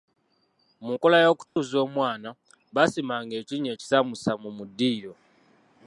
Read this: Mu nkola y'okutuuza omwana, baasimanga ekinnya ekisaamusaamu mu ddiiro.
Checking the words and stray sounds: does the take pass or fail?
fail